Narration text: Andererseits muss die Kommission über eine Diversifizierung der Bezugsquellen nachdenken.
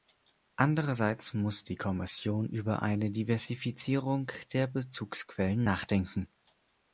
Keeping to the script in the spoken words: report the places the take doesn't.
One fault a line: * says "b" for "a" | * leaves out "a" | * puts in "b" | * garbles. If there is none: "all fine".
all fine